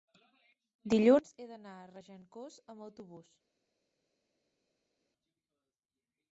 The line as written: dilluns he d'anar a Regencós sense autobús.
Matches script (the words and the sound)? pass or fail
fail